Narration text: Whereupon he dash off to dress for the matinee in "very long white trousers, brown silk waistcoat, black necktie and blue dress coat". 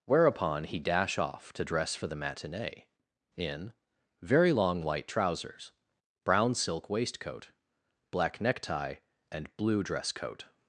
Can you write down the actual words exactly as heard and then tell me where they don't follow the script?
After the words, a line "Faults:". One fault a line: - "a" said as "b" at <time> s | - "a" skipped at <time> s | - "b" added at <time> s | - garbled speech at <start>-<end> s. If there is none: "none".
Whereupon he dash off to dress for the matinee in "very long white trousers, brown silk waistcoat, black necktie and blue dress coat".
Faults:
none